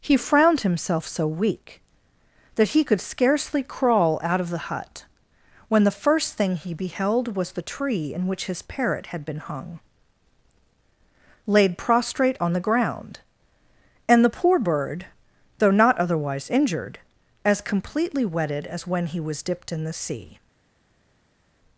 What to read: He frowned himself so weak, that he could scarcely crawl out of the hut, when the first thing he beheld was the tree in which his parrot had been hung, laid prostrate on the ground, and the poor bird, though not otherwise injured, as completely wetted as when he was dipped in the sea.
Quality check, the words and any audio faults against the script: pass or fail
pass